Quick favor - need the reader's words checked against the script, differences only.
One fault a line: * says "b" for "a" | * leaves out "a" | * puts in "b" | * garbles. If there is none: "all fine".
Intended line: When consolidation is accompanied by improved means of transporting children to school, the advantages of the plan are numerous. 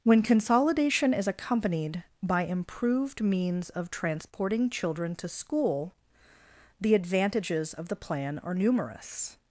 all fine